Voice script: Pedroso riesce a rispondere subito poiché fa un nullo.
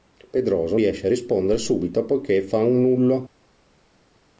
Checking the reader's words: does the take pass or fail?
pass